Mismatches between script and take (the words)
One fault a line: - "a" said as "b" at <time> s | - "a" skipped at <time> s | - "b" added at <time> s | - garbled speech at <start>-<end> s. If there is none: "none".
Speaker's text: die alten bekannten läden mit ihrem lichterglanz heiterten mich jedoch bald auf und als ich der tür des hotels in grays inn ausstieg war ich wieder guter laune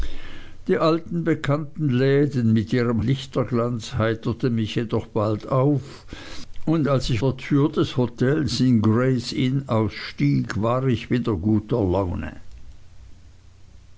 none